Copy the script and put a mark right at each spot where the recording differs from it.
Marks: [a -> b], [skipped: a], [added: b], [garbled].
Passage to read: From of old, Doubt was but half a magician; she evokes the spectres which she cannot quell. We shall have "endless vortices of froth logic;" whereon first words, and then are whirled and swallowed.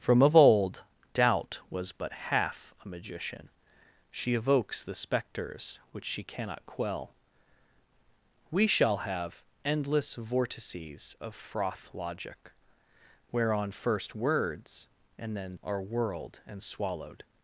From of old, Doubt was but half a magician; she evokes the spectres which she cannot quell. We shall have "endless vortices of froth logic;" whereon first words, and then are whirled and swallowed.